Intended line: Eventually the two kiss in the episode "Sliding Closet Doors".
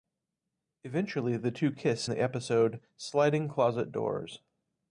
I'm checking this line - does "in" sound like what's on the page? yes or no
no